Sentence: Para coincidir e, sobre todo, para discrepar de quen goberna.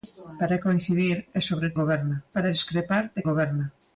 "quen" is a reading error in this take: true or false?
true